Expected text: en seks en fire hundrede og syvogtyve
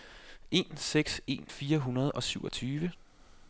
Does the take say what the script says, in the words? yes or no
yes